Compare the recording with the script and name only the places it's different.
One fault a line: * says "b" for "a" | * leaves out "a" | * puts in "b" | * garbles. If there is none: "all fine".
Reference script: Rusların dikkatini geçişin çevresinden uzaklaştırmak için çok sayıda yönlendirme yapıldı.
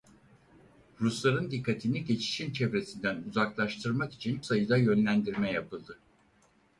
* leaves out "çok"